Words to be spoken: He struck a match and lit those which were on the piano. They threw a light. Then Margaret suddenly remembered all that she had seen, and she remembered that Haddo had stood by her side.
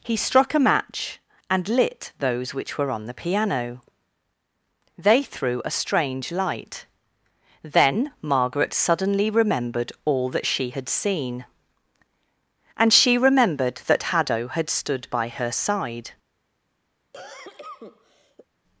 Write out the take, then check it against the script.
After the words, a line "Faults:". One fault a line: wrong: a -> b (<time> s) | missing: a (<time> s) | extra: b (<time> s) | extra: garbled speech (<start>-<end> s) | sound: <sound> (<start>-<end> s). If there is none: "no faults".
He struck a match and lit those which were on the piano. They threw a strange light. Then Margaret suddenly remembered all that she had seen, and she remembered that Haddo had stood by her side.
Faults:
extra: strange (5.7 s)
sound: cough (17.1-18.5 s)